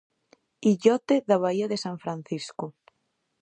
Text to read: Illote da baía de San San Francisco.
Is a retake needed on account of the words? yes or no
yes